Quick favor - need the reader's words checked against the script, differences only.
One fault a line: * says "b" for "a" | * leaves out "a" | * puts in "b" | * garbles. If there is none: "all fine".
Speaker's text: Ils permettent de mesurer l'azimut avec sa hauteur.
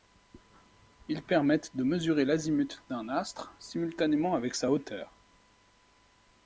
* puts in "d'un astre simultanément"